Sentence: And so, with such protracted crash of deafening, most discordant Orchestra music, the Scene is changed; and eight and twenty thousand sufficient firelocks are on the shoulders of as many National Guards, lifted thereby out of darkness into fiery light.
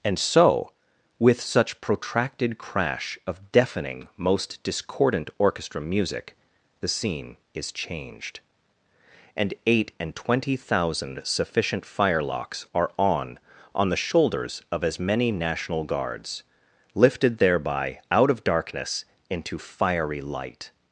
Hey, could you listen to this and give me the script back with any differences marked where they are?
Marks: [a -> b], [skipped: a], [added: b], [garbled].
And so, with such protracted crash of deafening, most discordant Orchestra music, the Scene is changed; and eight and twenty thousand sufficient firelocks are on [added: on] the shoulders of as many National Guards, lifted thereby out of darkness into fiery light.